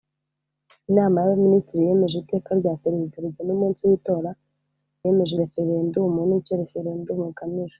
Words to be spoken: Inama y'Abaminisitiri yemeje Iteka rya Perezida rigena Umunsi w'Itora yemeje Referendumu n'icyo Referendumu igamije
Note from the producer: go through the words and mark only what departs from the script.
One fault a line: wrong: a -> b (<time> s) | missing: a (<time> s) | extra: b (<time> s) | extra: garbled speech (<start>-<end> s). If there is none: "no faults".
no faults